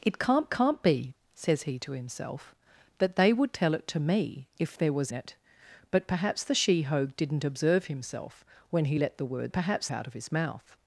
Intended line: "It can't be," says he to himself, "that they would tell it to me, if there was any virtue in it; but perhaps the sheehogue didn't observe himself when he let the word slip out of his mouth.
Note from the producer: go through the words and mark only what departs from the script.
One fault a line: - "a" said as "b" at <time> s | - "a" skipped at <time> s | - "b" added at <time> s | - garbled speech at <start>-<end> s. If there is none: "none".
- "can't" added at 0.5 s
- "any virtue in" skipped at 5.1 s
- "slip" said as "perhaps" at 9.5 s